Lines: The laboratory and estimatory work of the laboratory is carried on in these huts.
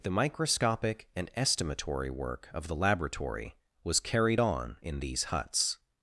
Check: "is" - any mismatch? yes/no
yes